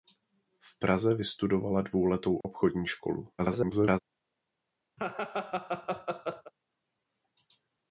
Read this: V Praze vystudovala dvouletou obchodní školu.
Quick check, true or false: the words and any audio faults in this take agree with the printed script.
false